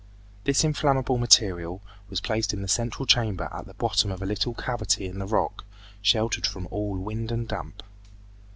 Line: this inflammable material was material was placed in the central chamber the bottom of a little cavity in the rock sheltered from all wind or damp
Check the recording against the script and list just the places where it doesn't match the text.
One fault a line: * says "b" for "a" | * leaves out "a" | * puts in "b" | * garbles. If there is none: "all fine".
* leaves out "material was"
* puts in "at"
* says "and" for "or"